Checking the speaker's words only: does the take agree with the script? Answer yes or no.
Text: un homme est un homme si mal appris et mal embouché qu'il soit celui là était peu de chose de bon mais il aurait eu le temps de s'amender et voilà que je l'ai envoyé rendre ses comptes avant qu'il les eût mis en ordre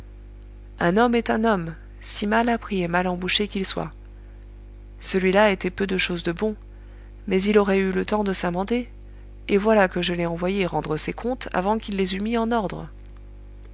yes